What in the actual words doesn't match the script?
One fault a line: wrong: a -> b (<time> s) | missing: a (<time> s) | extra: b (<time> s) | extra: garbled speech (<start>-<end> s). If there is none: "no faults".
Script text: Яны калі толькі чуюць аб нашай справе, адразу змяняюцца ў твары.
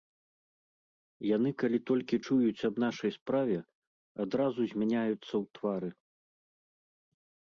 no faults